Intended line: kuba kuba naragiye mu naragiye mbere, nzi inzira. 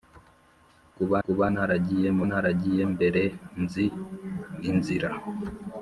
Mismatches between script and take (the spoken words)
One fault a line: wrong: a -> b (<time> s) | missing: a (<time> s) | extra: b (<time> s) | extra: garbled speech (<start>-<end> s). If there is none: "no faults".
no faults